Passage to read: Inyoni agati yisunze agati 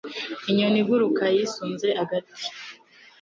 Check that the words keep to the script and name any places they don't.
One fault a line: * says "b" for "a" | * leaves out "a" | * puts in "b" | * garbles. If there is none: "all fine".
* says "iguruka" for "agati"